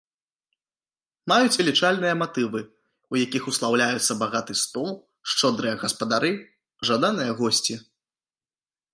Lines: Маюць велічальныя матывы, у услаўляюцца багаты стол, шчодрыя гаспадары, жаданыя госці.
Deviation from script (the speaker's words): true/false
true